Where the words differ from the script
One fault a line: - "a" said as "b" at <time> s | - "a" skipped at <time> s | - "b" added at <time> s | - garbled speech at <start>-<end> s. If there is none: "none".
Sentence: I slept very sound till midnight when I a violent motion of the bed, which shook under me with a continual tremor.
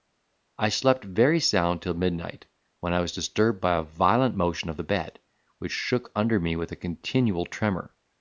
- "was disturbed by" added at 3.0 s